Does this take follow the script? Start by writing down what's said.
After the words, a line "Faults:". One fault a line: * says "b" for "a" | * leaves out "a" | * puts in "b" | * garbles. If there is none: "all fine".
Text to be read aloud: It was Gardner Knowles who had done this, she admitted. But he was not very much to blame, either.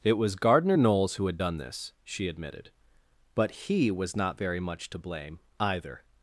It was Gardner Knowles who had done this, she admitted. But he was not very much to blame, either.
Faults:
all fine